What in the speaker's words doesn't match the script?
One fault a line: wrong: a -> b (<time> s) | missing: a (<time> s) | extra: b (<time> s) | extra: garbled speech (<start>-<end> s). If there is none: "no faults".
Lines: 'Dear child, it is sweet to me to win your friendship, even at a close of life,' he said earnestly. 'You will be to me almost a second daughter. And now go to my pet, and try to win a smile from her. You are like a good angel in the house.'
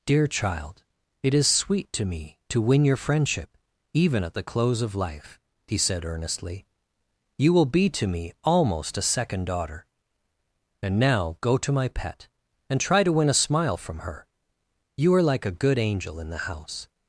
wrong: a -> the (4.3 s)